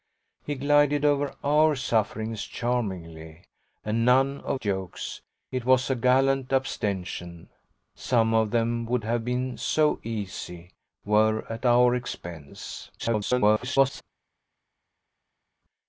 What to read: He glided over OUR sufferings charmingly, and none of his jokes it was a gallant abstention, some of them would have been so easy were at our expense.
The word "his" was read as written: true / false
false